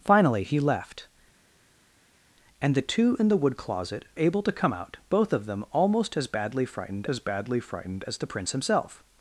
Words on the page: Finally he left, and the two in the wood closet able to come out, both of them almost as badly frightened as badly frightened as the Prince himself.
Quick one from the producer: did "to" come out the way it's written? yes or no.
yes